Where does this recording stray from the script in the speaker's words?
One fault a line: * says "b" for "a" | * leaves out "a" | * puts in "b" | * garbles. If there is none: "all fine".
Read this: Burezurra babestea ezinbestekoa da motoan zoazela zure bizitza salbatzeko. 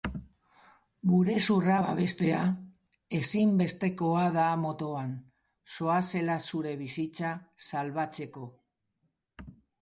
all fine